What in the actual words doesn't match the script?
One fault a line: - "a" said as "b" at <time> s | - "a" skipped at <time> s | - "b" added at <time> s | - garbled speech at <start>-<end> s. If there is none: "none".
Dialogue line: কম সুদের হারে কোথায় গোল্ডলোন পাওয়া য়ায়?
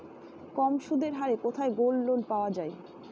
none